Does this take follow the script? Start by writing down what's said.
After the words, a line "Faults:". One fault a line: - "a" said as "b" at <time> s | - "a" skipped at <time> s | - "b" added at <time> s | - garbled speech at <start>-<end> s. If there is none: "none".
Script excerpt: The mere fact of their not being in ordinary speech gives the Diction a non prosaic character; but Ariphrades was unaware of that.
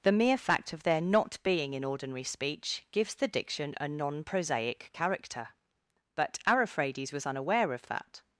The mere fact of their not being in ordinary speech gives the Diction a non prosaic character; but Ariphrades was unaware of that.
Faults:
none